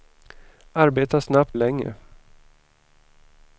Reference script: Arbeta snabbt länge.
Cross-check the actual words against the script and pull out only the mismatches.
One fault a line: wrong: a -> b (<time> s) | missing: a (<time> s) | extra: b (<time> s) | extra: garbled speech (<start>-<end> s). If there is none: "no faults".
no faults